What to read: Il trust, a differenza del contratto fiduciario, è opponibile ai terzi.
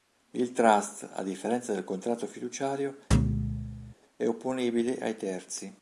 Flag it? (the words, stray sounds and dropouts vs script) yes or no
yes